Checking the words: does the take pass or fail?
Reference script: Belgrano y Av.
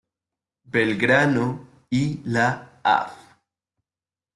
fail